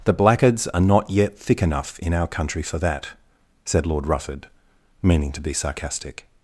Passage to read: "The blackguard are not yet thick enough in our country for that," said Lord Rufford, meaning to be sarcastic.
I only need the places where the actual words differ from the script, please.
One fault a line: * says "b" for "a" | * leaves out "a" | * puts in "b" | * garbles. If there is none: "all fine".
* says "blackguards" for "blackguard"